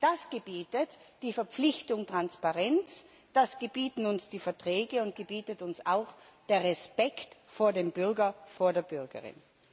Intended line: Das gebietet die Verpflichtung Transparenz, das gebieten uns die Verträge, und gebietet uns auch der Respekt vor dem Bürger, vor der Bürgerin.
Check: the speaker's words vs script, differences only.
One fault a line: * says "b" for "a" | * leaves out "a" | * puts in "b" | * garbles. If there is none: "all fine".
all fine